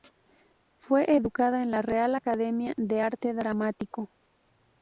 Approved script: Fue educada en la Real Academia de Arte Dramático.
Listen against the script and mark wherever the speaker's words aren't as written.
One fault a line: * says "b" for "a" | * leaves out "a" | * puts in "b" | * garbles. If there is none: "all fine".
all fine